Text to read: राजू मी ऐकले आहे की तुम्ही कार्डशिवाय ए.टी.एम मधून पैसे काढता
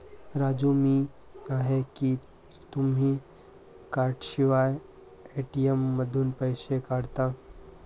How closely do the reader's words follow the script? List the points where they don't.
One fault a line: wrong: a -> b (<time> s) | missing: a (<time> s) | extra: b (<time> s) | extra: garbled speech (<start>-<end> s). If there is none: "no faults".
missing: ऐकले (1.1 s)